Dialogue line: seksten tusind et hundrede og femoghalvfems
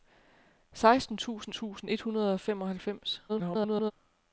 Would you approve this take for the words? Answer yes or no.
no